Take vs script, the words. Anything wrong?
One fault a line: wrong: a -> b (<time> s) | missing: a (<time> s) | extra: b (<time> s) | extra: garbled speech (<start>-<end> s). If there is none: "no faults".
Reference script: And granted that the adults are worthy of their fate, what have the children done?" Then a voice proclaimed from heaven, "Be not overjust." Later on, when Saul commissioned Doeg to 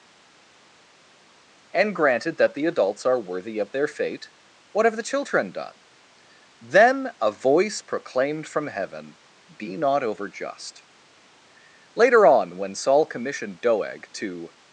no faults